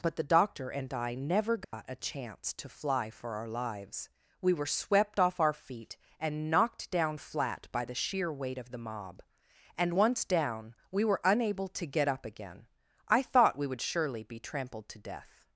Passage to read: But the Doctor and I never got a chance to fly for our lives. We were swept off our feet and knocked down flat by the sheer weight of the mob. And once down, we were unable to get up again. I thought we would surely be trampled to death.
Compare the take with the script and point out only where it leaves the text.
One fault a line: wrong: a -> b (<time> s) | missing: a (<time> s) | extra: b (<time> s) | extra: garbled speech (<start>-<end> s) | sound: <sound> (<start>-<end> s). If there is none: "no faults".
sound: dropout (1.6-1.7 s)